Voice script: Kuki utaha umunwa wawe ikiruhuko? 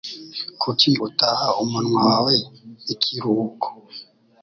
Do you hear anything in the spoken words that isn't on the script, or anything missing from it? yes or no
no